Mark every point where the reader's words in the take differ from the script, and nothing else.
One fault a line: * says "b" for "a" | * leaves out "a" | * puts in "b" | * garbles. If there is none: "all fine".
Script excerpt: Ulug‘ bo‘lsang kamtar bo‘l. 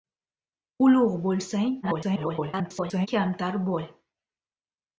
* garbles